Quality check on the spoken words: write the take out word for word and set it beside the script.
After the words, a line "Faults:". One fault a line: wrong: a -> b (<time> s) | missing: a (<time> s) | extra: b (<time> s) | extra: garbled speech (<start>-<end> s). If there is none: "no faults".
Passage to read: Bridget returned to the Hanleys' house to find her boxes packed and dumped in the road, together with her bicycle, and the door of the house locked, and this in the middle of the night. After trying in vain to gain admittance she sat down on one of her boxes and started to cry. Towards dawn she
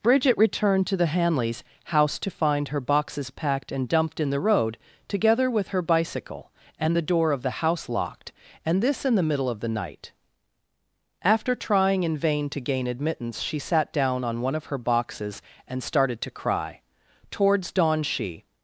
Bridget returned to the Hanleys' house to find her boxes packed and dumped in the road, together with her bicycle, and the door of the house locked, and this in the middle of the night. After trying in vain to gain admittance she sat down on one of her boxes and started to cry. Towards dawn she
Faults:
no faults